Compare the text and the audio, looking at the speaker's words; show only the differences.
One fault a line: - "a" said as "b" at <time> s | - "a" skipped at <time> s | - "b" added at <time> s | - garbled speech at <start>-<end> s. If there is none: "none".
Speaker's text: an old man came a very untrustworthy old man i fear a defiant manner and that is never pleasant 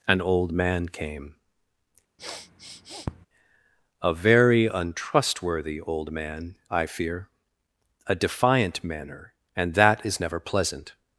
none